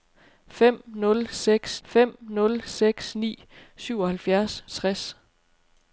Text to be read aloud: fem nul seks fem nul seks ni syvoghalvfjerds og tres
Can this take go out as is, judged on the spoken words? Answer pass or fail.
pass